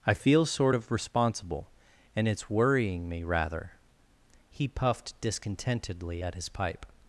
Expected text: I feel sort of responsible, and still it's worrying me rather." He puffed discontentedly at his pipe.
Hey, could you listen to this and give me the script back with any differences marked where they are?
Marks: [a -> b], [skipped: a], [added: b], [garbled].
I feel sort of responsible, and [skipped: still] it's worrying me rather." He puffed discontentedly at his pipe.